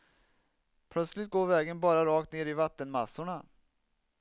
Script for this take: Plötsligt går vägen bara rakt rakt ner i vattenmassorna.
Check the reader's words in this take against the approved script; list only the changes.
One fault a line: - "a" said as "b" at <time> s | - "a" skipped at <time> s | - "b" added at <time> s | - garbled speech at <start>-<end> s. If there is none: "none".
- "rakt" skipped at 2.3 s